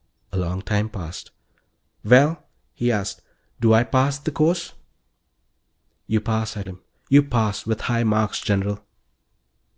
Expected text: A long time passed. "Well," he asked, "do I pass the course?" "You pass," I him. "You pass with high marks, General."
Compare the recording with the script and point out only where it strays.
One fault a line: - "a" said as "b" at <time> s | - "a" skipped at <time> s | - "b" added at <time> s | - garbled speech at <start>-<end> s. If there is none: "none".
none